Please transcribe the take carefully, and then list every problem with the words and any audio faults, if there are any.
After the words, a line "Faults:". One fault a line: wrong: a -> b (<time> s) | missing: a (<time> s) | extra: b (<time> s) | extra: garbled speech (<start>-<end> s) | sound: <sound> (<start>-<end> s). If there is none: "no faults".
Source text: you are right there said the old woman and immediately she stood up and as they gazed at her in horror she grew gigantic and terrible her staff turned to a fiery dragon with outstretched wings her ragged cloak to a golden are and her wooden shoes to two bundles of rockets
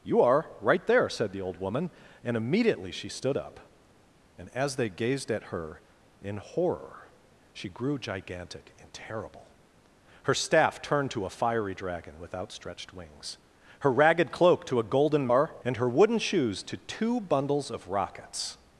you are right there said the old woman and immediately she stood up and as they gazed at her in horror she grew gigantic and terrible her staff turned to a fiery dragon with outstretched wings her ragged cloak to a golden are and her wooden shoes to two bundles of rockets
Faults:
no faults